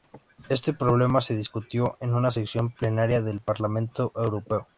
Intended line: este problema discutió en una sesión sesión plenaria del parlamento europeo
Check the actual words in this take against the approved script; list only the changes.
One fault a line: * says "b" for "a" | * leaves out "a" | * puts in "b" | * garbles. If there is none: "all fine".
* puts in "se"
* leaves out "sesión"